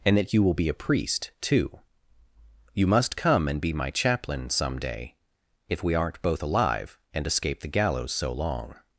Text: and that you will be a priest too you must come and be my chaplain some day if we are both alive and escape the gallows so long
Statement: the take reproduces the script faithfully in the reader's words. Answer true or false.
false